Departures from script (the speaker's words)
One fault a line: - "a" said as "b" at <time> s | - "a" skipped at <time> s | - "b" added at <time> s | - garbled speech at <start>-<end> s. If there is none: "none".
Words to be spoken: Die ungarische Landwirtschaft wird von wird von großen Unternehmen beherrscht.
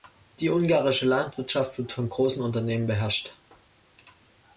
- "wird von" skipped at 2.1 s